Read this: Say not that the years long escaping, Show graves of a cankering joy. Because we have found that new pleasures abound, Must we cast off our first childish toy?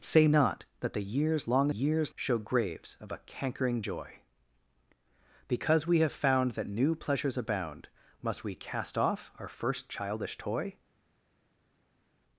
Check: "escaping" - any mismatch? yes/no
yes